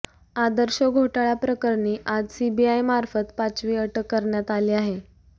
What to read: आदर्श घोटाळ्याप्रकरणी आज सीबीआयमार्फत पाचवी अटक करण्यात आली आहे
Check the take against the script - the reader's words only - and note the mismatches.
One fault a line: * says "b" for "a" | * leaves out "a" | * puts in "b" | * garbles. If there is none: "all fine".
all fine